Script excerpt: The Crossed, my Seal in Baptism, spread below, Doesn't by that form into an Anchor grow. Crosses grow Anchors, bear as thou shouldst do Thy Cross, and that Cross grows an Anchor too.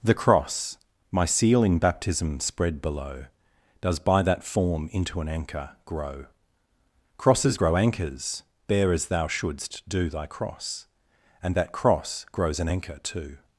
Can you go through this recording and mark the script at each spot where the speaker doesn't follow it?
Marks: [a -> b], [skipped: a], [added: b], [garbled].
The [Crossed, -> Cross] my Seal in Baptism, spread below, [Doesn't -> Does] by that form into an Anchor grow. Crosses grow Anchors, bear as thou shouldst do Thy Cross, and that Cross grows an Anchor too.